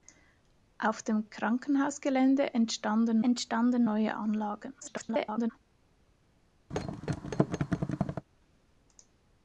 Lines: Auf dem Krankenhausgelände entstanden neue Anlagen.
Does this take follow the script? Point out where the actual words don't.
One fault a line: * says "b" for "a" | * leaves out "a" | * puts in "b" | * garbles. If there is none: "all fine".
* puts in "entstanden"
* garbles